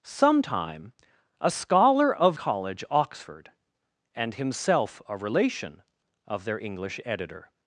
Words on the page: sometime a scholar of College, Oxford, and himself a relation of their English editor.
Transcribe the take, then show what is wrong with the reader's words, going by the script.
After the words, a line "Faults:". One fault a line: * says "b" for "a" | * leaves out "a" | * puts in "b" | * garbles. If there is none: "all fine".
sometime a scholar of College, Oxford, and himself a relation of their English editor.
Faults:
all fine